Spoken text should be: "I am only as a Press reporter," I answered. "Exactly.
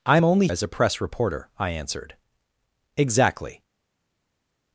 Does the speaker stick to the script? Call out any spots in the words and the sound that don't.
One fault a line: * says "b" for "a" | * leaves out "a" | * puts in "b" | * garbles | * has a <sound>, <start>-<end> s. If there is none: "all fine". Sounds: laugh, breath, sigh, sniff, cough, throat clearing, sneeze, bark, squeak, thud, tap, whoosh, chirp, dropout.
all fine